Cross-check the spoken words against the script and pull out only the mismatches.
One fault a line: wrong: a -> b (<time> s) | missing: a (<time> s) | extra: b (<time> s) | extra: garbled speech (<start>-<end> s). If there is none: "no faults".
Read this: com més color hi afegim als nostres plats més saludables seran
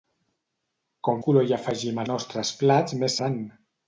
missing: més (1.2 s)
missing: als (2.0 s)
missing: saludables (3.2 s)